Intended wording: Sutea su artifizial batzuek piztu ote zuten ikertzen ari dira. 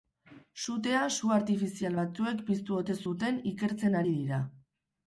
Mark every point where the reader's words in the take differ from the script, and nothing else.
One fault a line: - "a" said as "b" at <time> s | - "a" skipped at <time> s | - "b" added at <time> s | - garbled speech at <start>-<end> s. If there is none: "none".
none